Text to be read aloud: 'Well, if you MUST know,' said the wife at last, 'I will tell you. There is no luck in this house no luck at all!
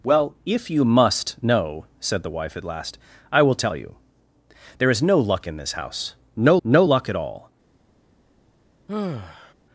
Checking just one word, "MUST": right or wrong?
right